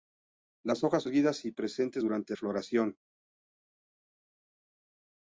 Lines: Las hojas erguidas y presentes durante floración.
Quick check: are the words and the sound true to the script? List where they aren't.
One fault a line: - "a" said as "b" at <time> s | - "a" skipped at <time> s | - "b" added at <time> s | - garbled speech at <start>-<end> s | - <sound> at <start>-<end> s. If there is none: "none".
none